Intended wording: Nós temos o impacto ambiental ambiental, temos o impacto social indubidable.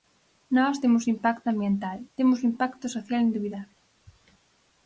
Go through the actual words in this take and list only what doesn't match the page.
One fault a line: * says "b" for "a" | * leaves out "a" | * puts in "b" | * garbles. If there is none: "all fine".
* leaves out "ambiental"